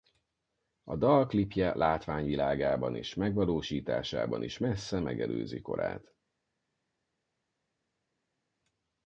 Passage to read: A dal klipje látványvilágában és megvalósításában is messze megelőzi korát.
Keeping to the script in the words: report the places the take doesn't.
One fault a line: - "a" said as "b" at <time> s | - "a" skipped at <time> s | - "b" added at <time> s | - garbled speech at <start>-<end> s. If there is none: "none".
none